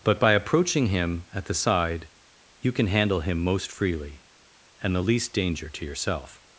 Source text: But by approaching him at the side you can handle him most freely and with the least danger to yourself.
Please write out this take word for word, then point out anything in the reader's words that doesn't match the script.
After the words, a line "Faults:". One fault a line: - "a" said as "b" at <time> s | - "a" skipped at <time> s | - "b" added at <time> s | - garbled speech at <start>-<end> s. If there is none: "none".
But by approaching him at the side you can handle him most freely and the least danger to yourself.
Faults:
- "with" skipped at 5.0 s